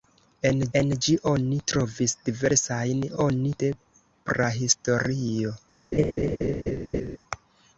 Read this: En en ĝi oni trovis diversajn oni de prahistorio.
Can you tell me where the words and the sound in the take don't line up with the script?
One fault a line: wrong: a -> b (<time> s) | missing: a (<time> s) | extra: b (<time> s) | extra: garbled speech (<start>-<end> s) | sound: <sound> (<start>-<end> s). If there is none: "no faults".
sound: laugh (5.9-7.2 s)